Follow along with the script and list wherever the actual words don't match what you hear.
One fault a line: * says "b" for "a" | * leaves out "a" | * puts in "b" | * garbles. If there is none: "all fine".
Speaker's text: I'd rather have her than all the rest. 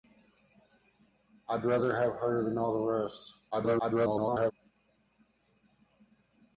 * garbles